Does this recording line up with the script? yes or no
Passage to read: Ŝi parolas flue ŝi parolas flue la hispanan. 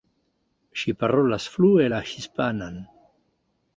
no